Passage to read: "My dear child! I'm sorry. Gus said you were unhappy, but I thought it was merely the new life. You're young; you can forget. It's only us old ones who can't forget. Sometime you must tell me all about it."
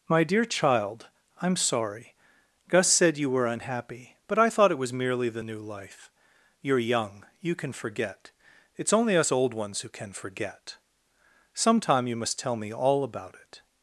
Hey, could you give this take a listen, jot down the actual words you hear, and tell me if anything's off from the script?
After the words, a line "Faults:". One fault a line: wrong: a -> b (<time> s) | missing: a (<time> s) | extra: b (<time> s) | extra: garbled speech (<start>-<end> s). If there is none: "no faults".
"My dear child! I'm sorry. Gus said you were unhappy, but I thought it was merely the new life. You're young; you can forget. It's only us old ones who can forget. Sometime you must tell me all about it."
Faults:
wrong: can't -> can (9.9 s)